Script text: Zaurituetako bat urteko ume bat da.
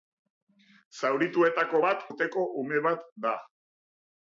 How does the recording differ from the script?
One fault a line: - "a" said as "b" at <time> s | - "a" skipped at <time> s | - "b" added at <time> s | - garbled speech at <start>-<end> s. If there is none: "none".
none